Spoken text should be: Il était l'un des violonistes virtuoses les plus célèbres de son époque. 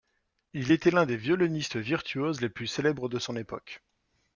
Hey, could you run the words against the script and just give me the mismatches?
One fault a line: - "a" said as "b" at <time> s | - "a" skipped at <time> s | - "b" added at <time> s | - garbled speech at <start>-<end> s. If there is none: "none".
none